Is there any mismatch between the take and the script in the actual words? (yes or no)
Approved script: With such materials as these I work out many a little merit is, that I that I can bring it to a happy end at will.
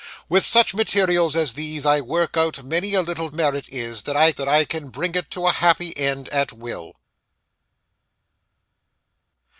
no